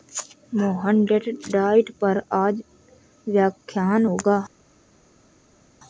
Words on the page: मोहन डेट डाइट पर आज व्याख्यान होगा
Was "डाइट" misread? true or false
false